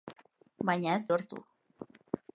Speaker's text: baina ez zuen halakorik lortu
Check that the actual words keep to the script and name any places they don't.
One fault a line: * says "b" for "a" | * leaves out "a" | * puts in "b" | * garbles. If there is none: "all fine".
* leaves out "zuen halakorik"